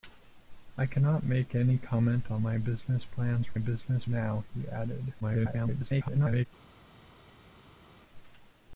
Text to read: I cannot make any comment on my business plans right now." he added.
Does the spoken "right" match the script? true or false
false